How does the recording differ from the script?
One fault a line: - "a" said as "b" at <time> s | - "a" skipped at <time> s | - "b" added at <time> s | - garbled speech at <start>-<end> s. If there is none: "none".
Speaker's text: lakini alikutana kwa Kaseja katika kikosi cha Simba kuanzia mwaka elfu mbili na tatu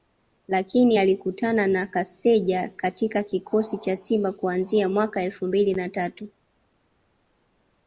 - "kwa" said as "na" at 1.7 s